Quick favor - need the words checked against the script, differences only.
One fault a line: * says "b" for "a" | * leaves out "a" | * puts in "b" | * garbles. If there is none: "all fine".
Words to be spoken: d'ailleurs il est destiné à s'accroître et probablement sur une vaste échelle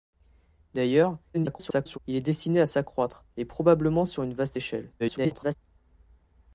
* garbles
* garbles